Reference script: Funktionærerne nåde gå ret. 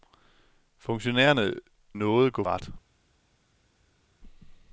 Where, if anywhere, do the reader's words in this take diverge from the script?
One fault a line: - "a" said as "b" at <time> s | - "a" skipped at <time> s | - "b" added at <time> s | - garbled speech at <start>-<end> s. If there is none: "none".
none